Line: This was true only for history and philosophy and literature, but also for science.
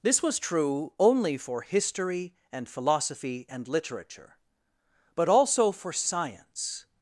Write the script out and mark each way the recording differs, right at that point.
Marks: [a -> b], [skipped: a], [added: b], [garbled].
This was true only for history and philosophy and literature, but also for science.